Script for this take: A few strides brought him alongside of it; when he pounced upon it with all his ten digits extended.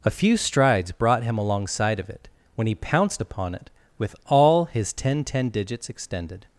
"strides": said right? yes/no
yes